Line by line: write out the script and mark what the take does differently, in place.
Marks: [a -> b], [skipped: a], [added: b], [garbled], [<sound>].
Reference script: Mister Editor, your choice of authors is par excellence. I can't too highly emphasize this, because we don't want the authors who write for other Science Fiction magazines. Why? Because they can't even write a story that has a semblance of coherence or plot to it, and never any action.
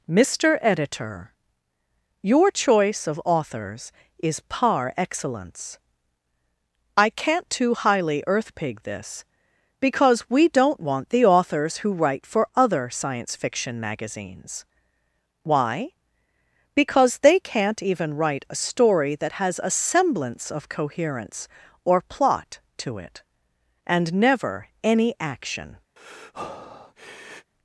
Mister Editor, your choice of authors is par excellence. I can't too highly [emphasize -> earthpig] this, because we don't want the authors who write for other Science Fiction magazines. Why? Because they can't even write a story that has a semblance of coherence or plot to it, and never any action. [breath]